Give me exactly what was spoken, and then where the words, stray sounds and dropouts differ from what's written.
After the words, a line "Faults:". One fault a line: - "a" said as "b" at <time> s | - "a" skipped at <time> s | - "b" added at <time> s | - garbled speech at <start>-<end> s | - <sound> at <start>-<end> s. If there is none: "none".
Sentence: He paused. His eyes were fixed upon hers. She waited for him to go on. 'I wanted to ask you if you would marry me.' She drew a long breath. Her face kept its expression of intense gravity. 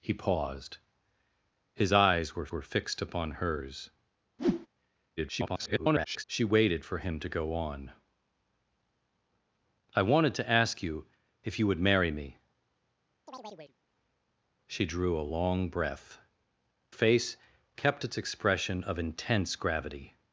He paused. His eyes were were fixed upon hers. [garbled] She waited for him to go on. 'I wanted to ask you if you would marry me.' She drew a long breath. Face kept its expression of intense gravity.
Faults:
- "were" added at 2.5 s
- whoosh at 4.4-4.7 s
- garbled speech at 5.2-6.2 s
- chirp at 13.3-13.8 s
- "Her" skipped at 16.2 s